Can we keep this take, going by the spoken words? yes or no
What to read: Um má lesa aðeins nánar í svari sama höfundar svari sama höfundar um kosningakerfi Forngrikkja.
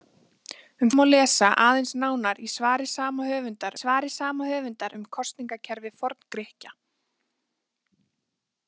yes